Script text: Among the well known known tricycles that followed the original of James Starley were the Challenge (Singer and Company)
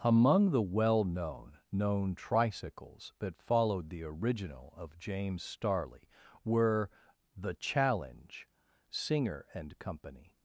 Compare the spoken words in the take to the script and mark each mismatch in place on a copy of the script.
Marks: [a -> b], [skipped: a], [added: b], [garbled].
Among the well known known tricycles that followed the original of James Starley were the Challenge (Singer and Company)